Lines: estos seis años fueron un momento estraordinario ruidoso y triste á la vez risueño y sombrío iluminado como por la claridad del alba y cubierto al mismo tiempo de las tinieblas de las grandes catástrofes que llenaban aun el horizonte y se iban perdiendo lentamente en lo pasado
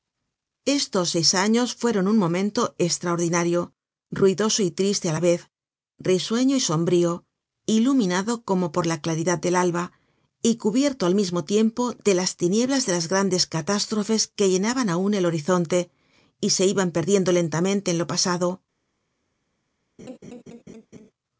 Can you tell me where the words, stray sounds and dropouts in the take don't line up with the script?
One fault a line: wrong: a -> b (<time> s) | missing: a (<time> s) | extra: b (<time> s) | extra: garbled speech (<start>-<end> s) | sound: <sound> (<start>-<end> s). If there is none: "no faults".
sound: laugh (20.0-21.1 s)